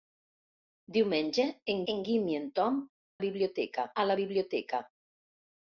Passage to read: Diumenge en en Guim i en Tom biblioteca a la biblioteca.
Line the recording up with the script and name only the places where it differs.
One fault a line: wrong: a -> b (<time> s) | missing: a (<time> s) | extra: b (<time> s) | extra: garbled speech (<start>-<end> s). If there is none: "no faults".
no faults